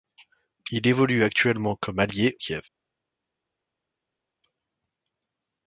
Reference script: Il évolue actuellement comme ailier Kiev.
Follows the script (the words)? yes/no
yes